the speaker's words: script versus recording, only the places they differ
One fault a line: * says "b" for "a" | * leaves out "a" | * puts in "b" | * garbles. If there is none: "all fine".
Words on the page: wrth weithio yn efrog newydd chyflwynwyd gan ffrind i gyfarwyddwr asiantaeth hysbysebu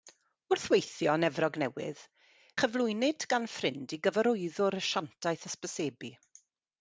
all fine